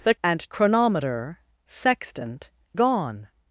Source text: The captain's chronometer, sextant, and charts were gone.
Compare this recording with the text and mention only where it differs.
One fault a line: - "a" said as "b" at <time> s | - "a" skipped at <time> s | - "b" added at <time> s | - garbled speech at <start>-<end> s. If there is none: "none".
- "captain's" said as "and" at 0.2 s
- "and charts were" skipped at 2.5 s